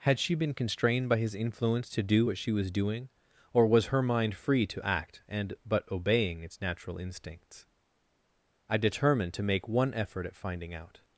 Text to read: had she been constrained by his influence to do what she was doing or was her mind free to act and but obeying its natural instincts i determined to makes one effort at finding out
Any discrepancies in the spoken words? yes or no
yes